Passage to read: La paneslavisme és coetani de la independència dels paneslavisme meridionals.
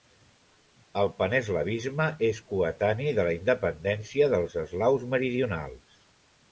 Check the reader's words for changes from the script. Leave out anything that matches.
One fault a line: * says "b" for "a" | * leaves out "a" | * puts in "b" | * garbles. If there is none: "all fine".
* says "El" for "La"
* says "eslaus" for "paneslavisme"